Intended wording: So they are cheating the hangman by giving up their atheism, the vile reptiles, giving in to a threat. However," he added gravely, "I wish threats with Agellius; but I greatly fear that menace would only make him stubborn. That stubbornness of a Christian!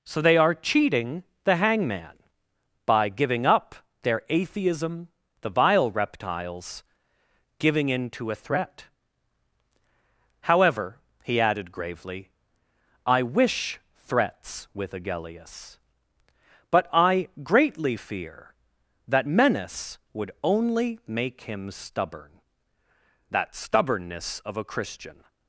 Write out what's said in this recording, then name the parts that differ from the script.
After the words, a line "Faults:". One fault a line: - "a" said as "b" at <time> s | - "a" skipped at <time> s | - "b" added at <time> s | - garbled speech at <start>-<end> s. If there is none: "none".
So they are cheating the hangman by giving up their atheism, the vile reptiles, giving in to a threat. However," he added gravely, "I wish threats with Agellius; but I greatly fear that menace would only make him stubborn. That stubbornness of a Christian!
Faults:
none